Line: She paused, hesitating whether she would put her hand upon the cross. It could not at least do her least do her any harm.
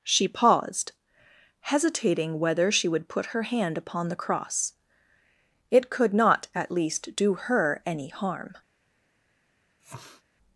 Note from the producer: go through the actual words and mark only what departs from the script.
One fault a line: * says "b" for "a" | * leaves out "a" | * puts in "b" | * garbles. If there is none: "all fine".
* leaves out "least do her"